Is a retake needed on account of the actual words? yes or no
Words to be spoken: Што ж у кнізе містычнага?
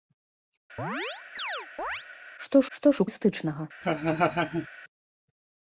yes